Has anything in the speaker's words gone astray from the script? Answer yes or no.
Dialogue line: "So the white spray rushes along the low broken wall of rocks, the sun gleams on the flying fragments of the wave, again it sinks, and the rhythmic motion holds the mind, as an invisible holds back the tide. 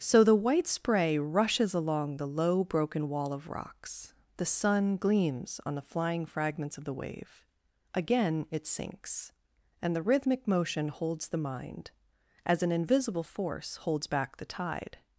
yes